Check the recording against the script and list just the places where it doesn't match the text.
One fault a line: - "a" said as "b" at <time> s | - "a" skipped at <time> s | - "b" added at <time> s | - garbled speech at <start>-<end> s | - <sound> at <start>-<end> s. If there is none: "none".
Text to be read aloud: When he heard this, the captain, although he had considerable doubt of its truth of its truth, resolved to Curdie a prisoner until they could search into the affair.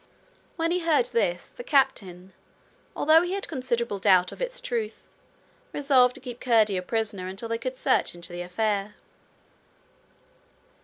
- "of its truth" skipped at 5.0 s
- "keep" added at 6.2 s